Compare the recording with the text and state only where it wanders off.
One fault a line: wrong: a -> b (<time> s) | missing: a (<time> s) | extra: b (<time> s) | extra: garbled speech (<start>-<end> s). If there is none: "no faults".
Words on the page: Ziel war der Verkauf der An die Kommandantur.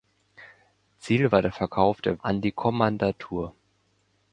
no faults